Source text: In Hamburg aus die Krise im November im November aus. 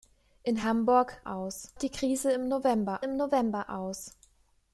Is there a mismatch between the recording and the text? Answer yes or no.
no